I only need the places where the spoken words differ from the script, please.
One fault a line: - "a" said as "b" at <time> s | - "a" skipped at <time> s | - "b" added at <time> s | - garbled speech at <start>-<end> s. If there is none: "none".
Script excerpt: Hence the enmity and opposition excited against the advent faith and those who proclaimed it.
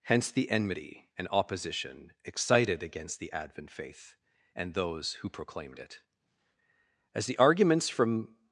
- "As the arguments from" added at 7.1 s